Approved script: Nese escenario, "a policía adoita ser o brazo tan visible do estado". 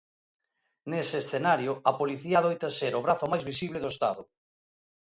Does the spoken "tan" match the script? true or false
false